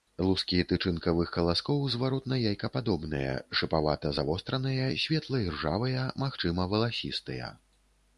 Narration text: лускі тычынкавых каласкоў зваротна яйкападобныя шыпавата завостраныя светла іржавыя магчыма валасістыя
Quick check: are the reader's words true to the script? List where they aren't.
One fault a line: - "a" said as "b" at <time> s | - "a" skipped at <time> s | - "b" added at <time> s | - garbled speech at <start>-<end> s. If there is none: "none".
none